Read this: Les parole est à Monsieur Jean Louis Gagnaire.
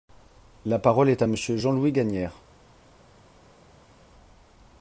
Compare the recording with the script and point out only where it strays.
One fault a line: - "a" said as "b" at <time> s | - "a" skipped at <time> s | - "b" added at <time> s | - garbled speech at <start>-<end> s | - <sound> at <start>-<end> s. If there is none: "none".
- "Les" said as "La" at 0.7 s